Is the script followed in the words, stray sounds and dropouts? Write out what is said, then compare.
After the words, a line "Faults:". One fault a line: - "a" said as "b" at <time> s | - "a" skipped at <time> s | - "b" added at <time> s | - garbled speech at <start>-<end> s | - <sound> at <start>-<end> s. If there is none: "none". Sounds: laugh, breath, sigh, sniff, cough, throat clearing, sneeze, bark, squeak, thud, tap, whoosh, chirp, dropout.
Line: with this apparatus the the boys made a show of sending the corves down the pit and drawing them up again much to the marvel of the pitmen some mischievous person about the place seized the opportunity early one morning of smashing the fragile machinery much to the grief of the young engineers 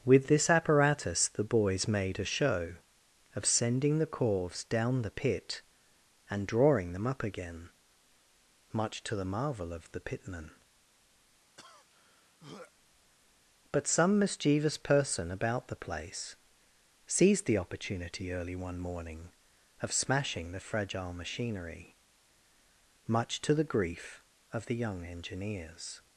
with this apparatus the boys made a show of sending the corves down the pit and drawing them up again much to the marvel of the pitmen but some mischievous person about the place seized the opportunity early one morning of smashing the fragile machinery much to the grief of the young engineers
Faults:
- "the" skipped at 1.4 s
- throat clearing at 11.6-12.7 s
- "but" added at 13.7 s